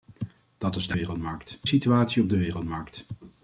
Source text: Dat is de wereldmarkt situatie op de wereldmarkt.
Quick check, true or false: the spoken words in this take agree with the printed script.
true